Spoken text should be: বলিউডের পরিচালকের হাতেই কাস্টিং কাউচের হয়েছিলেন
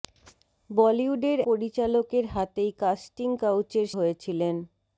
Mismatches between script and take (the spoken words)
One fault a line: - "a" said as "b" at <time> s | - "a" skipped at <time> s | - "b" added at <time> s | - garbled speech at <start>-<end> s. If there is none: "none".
none